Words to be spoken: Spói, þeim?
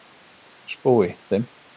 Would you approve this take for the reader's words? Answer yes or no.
yes